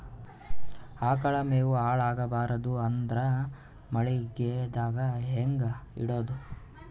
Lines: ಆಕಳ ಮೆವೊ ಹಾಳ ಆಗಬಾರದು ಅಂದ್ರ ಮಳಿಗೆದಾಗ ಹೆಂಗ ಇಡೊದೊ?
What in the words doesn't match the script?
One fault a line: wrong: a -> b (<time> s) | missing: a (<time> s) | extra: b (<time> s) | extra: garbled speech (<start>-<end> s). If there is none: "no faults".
no faults